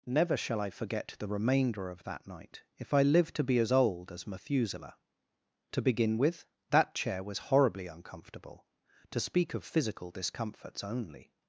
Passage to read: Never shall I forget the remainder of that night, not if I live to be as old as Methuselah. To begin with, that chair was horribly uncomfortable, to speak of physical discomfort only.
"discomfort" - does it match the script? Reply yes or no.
no